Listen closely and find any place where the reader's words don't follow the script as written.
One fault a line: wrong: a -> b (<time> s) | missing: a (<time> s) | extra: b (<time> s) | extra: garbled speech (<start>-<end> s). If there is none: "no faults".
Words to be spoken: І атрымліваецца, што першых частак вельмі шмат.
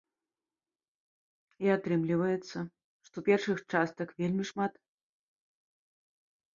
no faults